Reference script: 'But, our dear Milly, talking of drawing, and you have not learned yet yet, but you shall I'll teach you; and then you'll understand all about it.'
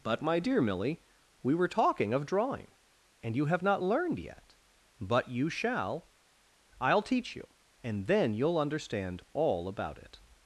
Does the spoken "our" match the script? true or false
false